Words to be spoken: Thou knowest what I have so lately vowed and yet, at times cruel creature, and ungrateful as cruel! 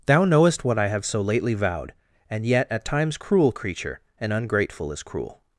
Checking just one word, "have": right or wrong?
right